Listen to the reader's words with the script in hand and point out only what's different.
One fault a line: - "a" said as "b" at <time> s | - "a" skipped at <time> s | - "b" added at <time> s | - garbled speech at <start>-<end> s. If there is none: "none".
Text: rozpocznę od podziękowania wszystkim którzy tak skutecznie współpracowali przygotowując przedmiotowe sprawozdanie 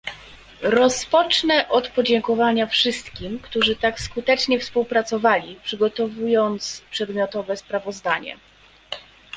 none